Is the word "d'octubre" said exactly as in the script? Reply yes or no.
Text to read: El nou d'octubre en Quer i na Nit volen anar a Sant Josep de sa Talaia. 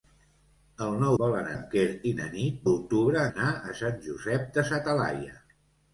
no